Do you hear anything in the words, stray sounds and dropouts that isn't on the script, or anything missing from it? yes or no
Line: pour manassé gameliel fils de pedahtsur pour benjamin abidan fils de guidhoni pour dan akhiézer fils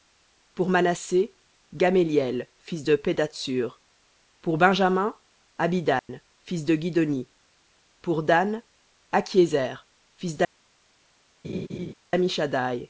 yes